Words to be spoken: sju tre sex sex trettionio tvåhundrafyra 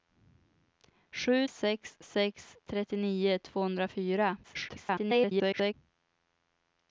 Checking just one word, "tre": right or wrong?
wrong